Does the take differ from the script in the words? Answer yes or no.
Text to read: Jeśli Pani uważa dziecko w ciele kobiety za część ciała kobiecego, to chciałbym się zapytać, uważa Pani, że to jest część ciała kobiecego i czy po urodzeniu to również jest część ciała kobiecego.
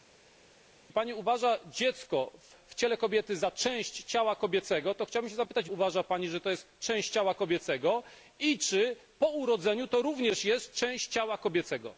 no